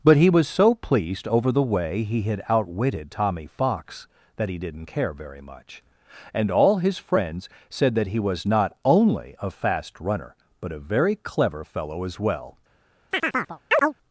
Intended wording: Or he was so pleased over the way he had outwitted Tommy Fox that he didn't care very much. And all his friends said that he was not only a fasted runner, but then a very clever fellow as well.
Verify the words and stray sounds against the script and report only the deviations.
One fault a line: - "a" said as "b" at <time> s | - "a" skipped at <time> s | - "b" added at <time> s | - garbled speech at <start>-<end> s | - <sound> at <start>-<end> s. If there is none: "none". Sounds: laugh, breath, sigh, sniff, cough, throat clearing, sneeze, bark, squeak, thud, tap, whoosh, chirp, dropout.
- "Or" said as "But" at 0.0 s
- "fasted" said as "fast" at 9.5 s
- "then" skipped at 10.7 s
- chirp at 13.1-13.9 s